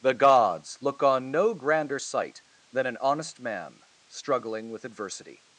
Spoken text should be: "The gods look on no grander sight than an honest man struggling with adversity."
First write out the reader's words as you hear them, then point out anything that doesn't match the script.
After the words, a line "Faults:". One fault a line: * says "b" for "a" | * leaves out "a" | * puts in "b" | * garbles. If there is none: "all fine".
"The gods look on no grander sight than an honest man struggling with adversity."
Faults:
all fine